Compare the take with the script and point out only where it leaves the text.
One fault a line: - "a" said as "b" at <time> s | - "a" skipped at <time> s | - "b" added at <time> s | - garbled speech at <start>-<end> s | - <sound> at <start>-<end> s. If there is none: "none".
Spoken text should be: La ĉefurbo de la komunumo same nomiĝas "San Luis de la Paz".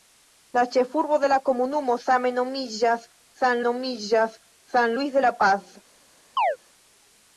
- "nomiĝas San" added at 3.7 s
- chirp at 6.4-6.6 s